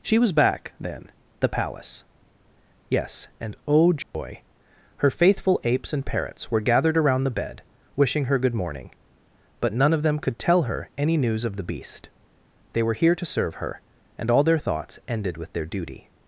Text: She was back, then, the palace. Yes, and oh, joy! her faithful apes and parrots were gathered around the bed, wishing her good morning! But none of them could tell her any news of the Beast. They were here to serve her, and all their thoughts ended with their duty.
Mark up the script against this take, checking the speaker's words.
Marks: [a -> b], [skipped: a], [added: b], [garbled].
She was back, then, the palace. Yes, and oh, joy! her faithful apes and parrots were gathered around the bed, wishing her good morning! But none of them could tell her any news of the Beast. They were here to serve her, and all their thoughts ended with their duty.